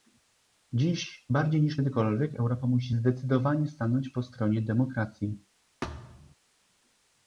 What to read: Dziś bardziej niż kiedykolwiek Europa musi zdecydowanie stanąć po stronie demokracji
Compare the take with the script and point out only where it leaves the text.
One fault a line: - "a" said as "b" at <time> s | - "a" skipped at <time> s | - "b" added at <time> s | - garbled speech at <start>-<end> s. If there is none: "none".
none